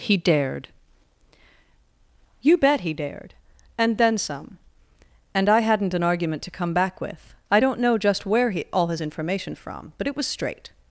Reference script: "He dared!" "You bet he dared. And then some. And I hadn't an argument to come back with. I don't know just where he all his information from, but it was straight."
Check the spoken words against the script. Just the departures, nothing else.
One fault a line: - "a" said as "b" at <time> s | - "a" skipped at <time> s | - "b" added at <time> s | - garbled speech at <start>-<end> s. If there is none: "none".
none